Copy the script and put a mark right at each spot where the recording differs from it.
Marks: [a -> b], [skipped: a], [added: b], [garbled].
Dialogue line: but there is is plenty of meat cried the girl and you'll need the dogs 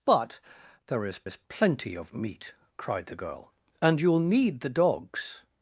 but there is is plenty of meat cried the girl and you'll need the dogs